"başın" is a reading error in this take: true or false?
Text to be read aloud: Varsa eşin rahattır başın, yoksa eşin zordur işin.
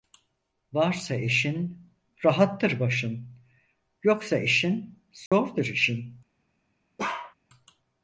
false